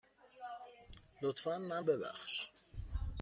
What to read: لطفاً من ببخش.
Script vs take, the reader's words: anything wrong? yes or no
no